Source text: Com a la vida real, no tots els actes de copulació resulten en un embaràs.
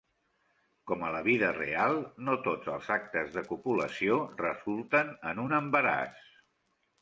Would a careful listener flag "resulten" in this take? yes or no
no